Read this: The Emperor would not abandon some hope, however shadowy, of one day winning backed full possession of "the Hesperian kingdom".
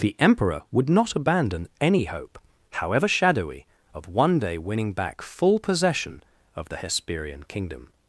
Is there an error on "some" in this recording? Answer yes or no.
yes